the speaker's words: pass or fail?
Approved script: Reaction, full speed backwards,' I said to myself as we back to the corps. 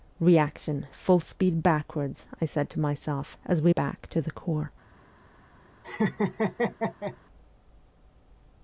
pass